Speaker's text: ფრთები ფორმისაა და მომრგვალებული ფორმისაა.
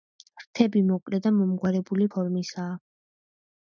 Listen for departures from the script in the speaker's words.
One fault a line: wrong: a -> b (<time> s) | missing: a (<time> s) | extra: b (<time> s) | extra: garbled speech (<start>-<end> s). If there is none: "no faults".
wrong: ფორმისაა -> მოკლე (0.9 s)